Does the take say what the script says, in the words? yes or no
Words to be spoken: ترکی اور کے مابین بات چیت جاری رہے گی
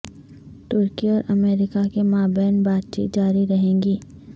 no